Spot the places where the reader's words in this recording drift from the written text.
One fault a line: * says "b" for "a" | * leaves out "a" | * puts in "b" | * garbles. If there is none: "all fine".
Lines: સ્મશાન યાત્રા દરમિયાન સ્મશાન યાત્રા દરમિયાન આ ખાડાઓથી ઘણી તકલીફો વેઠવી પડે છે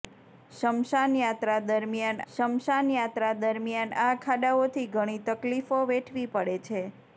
all fine